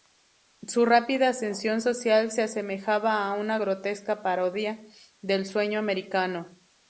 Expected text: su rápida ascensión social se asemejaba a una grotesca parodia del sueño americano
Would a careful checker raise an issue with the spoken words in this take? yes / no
no